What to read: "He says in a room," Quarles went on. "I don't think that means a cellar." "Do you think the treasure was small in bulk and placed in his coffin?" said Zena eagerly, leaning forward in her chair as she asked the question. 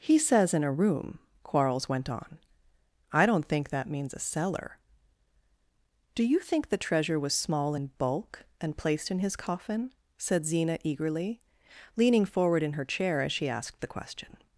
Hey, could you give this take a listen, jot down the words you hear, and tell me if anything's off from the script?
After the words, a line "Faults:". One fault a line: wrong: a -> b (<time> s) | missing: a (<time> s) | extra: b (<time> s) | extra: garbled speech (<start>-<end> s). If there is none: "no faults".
"He says in a room," Quarles went on. "I don't think that means a cellar." "Do you think the treasure was small in bulk and placed in his coffin?" said Zena eagerly, leaning forward in her chair as she asked the question.
Faults:
no faults